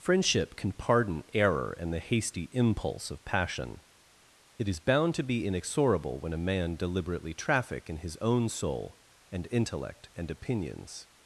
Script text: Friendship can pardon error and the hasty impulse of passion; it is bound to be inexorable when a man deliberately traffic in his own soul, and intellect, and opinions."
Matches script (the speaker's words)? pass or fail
pass